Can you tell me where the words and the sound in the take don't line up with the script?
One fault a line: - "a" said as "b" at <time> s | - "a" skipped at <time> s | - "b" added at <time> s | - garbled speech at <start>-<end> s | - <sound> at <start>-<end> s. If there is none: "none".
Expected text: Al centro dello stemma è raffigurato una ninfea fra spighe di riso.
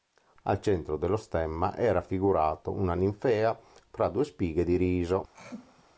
- "due" added at 4.1 s
- throat clearing at 5.3-5.8 s